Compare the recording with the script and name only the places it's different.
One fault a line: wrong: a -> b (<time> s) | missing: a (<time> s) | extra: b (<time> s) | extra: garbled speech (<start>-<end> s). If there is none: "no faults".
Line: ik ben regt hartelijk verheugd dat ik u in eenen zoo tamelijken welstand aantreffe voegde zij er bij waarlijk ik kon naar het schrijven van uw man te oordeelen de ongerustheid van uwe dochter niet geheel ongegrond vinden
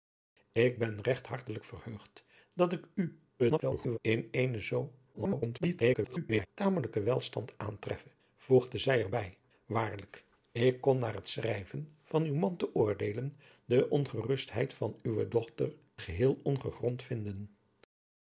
extra: garbled speech (3.4-4.0 s)
extra: garbled speech (5.1-6.5 s)
missing: niet (15.8 s)